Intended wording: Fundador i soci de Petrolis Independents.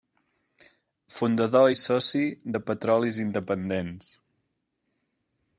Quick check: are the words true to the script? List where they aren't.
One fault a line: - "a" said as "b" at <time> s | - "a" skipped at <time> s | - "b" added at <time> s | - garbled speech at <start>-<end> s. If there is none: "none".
none